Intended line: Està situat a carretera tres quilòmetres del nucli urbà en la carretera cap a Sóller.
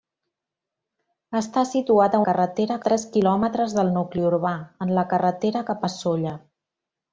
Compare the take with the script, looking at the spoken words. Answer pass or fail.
pass